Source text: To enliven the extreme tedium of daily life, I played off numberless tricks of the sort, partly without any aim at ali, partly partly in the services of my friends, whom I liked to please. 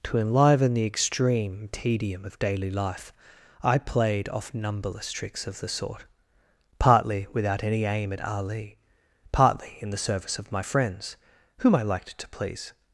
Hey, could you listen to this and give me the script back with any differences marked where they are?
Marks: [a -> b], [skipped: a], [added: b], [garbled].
To enliven the extreme tedium of daily life, I played off numberless tricks of the sort, partly without any aim at ali, partly [skipped: partly] in the [services -> service] of my friends, whom I liked to please.